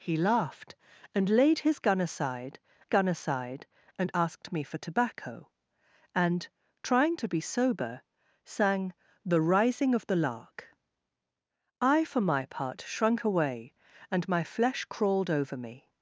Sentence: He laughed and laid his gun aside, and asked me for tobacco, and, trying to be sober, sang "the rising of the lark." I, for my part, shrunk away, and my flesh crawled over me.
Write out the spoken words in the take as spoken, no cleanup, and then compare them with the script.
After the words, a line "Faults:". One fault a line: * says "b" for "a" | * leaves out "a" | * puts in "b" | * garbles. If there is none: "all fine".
He laughed and laid his gun aside gun aside, and asked me for tobacco, and, trying to be sober, sang "the rising of the lark." I, for my part, shrunk away, and my flesh crawled over me.
Faults:
* puts in "gun aside"